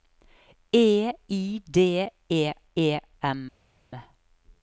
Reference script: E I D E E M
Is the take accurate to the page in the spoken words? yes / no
yes